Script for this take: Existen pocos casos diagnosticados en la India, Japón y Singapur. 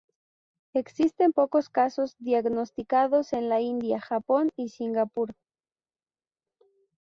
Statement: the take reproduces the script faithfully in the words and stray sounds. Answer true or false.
true